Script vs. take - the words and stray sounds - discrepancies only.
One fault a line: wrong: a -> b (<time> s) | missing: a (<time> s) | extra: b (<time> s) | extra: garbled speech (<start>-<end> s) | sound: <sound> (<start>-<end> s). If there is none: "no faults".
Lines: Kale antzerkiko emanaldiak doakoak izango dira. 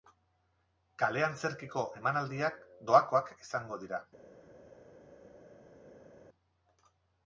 no faults